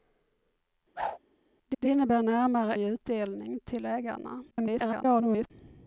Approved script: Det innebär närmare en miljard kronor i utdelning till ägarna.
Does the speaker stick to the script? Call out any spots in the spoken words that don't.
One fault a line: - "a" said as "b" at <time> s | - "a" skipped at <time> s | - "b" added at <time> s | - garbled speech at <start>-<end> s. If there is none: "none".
- "det" added at 1.8 s
- "en miljard kronor" skipped at 2.8 s
- garbled speech at 4.5-5.5 s